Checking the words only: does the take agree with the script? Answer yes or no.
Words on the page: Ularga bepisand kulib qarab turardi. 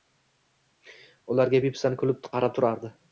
yes